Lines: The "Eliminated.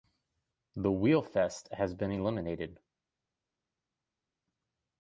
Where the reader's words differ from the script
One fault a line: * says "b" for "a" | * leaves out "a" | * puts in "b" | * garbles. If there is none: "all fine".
* puts in "Wheelfest has been"